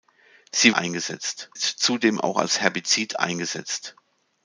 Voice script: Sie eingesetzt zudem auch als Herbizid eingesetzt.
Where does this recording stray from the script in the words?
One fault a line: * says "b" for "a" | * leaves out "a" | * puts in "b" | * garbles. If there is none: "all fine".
all fine